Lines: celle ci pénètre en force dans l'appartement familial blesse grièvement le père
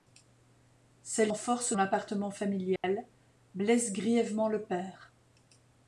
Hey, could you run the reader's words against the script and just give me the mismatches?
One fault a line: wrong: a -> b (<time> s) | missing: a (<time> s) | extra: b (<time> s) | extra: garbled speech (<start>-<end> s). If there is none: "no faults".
missing: ci pénètre (1.3 s)
missing: dans (1.7 s)